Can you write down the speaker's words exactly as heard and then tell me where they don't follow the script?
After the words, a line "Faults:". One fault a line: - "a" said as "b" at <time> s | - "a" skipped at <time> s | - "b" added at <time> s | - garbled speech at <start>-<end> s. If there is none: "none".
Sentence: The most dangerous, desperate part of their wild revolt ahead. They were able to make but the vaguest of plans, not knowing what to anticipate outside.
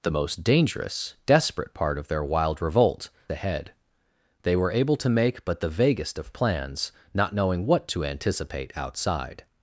The most dangerous, desperate part of their wild revolt ahead. They were able to make but the vaguest of plans, not knowing what to anticipate outside.
Faults:
none